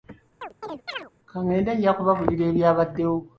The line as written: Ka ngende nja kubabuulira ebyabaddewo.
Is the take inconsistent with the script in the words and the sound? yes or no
yes